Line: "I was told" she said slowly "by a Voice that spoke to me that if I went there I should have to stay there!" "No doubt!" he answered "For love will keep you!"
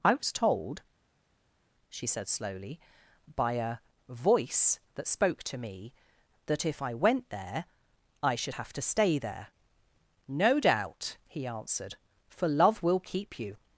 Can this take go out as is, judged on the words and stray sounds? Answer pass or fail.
pass